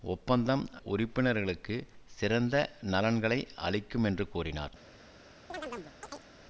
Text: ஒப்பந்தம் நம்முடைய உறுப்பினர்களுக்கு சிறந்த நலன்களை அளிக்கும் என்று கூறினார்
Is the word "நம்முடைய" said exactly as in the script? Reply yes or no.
no